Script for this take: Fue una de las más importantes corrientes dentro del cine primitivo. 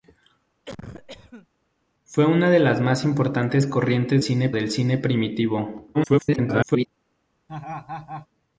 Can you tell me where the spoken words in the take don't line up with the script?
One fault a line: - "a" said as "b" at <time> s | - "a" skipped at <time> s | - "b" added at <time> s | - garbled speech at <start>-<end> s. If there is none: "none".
- "dentro" said as "cine" at 4.2 s
- garbled speech at 5.9-6.9 s